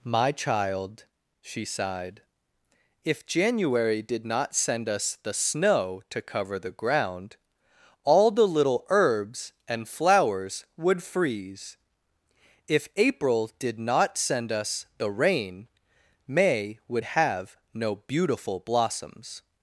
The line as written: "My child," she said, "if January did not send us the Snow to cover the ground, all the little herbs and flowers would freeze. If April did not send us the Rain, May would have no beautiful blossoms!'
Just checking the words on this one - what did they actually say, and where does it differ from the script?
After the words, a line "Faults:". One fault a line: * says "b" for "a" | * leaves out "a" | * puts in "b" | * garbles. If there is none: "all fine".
"My child," she sighed, "if January did not send us the Snow to cover the ground, all the little herbs and flowers would freeze. If April did not send us the Rain, May would have no beautiful blossoms!'
Faults:
* says "sighed" for "said"